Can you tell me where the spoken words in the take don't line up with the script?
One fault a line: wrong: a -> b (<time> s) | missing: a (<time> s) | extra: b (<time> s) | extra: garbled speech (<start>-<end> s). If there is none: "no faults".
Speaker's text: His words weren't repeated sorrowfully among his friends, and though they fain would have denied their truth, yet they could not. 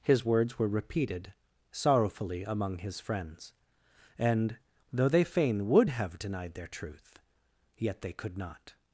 wrong: weren't -> were (0.6 s)